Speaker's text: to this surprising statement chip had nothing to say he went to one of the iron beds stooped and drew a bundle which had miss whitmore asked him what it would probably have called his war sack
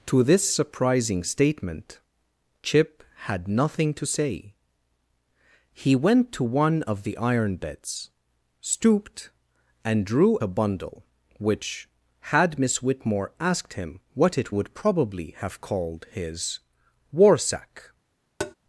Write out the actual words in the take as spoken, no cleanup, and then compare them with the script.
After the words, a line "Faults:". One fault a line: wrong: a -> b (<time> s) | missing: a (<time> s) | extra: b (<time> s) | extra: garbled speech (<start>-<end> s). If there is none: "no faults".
to this surprising statement chip had nothing to say he went to one of the iron beds stooped and drew a bundle which had miss whitmore asked him what it would probably have called his war sack
Faults:
no faults